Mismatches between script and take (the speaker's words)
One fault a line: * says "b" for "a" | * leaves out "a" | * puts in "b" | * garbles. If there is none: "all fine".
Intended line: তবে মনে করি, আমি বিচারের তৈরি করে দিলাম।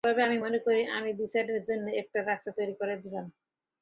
* puts in "আমি"
* puts in "জন্য একটা রাস্তা"